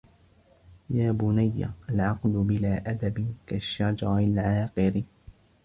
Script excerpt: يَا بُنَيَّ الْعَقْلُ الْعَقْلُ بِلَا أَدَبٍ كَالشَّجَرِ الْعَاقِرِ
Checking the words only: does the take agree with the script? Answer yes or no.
no